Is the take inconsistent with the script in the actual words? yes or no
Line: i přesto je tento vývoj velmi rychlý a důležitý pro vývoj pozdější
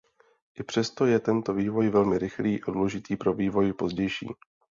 no